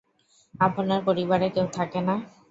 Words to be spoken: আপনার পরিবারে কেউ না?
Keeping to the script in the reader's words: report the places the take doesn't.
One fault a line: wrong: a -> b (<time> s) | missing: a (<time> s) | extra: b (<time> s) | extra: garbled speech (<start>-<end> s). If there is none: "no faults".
extra: থাকে (1.8 s)